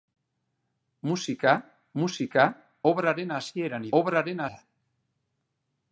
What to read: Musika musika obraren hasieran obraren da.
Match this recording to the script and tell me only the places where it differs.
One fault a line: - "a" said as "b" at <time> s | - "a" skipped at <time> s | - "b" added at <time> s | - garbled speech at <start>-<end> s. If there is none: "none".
none